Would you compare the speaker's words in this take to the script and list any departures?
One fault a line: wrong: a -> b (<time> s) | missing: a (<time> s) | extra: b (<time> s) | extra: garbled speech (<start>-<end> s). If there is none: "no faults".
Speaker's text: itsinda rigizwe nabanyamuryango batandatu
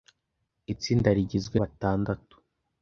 missing: nabanyamuryango (1.6 s)